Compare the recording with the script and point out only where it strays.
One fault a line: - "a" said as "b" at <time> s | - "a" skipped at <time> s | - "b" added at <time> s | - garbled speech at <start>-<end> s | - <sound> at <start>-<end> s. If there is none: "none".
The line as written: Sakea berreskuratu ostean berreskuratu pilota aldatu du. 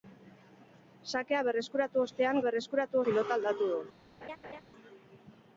- laugh at 4.2-4.6 s